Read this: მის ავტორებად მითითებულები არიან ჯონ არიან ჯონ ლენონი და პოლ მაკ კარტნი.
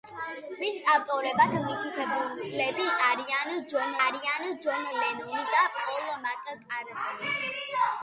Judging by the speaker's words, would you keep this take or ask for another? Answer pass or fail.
pass